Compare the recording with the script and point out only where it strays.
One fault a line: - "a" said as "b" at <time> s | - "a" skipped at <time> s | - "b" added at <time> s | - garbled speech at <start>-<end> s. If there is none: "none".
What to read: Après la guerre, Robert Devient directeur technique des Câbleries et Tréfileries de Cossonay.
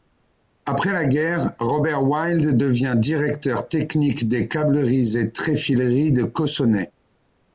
- "Wild" added at 2.0 s